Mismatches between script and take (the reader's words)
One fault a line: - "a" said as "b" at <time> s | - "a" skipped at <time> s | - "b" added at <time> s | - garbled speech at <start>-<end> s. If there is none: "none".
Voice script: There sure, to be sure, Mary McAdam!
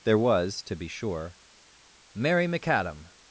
- "sure" said as "was" at 0.2 s